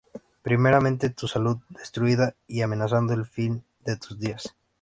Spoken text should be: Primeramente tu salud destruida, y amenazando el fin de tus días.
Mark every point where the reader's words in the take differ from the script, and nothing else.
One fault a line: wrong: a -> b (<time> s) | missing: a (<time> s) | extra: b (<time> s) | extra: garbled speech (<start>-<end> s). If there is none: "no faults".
no faults